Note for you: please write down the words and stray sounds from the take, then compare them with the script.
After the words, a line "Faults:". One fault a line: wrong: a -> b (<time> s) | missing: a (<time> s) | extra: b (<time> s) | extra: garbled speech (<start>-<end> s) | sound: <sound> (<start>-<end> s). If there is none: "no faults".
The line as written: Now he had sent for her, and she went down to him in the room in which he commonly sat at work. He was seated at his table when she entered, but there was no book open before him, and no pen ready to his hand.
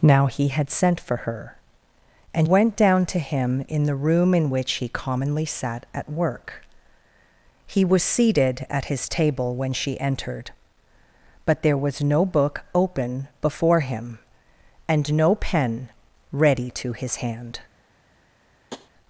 Now he had sent for her, and went down to him in the room in which he commonly sat at work. He was seated at his table when she entered, but there was no book open before him, and no pen ready to his hand.
Faults:
missing: she (2.5 s)
sound: tap (18.7-18.9 s)